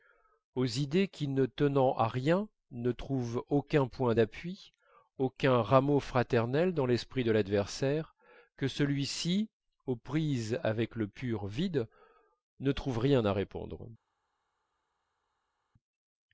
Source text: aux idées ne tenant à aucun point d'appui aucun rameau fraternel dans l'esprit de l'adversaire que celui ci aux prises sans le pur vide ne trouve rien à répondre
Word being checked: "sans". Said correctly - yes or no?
no